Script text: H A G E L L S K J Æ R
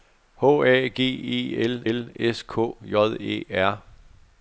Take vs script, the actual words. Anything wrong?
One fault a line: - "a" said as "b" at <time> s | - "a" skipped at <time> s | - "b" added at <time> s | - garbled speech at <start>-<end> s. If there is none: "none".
none